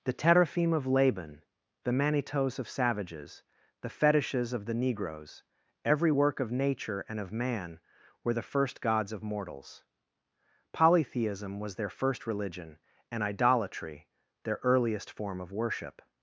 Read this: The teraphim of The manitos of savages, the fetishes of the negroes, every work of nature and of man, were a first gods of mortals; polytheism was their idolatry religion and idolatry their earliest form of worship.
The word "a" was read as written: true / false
false